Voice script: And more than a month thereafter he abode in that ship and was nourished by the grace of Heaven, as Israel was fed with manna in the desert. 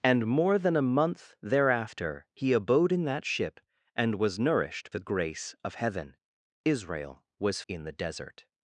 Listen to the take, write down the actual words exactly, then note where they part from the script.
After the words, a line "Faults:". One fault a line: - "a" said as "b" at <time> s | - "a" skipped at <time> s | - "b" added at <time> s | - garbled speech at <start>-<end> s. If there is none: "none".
And more than a month thereafter he abode in that ship and was nourished the grace of Heaven, Israel was in the desert.
Faults:
- "by" skipped at 4.9 s
- "as" skipped at 6.2 s
- "fed with manna" skipped at 7.6 s